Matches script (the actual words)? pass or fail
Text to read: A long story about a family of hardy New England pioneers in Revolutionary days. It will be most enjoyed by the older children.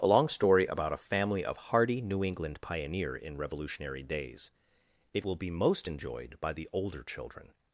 fail